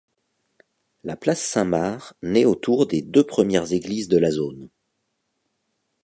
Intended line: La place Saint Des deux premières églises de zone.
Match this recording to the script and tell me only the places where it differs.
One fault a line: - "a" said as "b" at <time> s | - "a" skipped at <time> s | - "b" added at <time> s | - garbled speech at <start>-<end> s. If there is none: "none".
- "Marc naît autour" added at 1.6 s
- "la" added at 4.2 s